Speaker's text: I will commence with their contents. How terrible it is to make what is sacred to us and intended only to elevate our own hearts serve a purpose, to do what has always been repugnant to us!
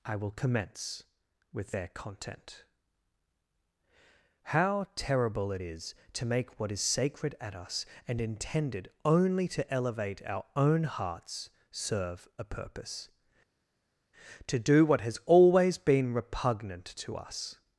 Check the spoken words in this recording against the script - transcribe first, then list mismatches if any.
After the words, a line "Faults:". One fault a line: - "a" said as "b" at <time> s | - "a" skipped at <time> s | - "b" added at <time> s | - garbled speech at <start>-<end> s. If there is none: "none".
I will commence with their content. How terrible it is to make what is sacred at us and intended only to elevate our own hearts serve a purpose, to do what has always been repugnant to us!
Faults:
- "contents" said as "content" at 1.9 s
- "to" said as "at" at 7.4 s